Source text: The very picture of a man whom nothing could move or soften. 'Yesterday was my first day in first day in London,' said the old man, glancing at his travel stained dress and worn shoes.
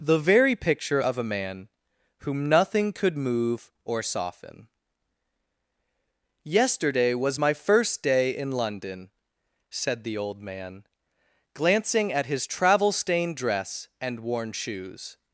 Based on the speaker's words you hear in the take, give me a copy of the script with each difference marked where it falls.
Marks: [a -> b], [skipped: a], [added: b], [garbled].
The very picture of a man whom nothing could move or soften. 'Yesterday was my first day in [skipped: first day in] London,' said the old man, glancing at his travel stained dress and worn shoes.